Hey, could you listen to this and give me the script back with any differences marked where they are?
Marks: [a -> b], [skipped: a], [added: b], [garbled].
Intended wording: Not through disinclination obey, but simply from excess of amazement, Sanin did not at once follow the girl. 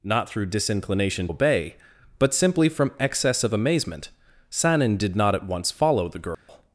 Not through disinclination obey, but simply from excess of amazement, Sanin did not at once follow the girl.